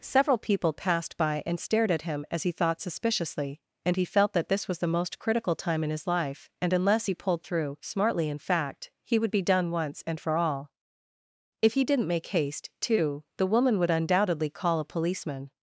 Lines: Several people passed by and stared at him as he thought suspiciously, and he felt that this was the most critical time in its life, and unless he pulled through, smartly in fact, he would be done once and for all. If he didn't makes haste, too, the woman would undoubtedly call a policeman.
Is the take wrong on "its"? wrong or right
wrong